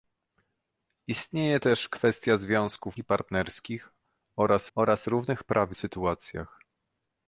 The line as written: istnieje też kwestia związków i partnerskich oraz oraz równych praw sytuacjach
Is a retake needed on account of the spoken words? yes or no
no